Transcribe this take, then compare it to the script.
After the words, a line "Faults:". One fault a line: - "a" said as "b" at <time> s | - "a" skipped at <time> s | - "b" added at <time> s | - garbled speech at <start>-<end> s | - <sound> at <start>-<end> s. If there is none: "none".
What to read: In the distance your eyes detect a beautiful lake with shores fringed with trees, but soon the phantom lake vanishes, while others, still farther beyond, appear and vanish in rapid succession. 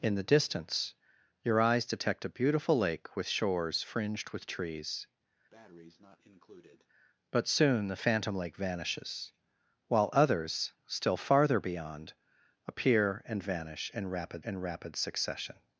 In the distance your eyes detect a beautiful lake with shores fringed with trees, but soon the phantom lake vanishes, while others, still farther beyond, appear and vanish in rapid in rapid succession.
Faults:
- breath at 5.5-6.9 s
- "in rapid" added at 14.4 s